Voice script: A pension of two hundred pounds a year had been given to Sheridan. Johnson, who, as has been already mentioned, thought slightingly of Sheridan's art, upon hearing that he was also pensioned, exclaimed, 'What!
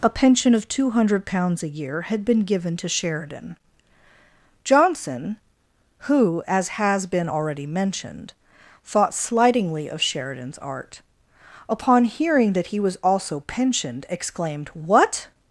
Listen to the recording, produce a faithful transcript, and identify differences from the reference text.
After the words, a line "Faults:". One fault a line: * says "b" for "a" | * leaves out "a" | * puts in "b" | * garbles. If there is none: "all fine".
A pension of two hundred pounds a year had been given to Sheridan. Johnson, who, as has been already mentioned, thought slightingly of Sheridan's art, upon hearing that he was also pensioned, exclaimed, 'What!
Faults:
all fine